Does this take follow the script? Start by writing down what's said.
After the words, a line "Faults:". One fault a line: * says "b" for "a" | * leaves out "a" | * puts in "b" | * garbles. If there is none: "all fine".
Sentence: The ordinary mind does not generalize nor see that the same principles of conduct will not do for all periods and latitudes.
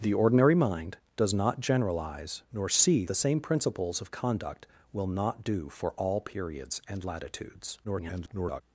The ordinary mind does not generalize nor see the same principles of conduct will not do for all periods and latitudes. [garbled]
Faults:
* leaves out "that"
* garbles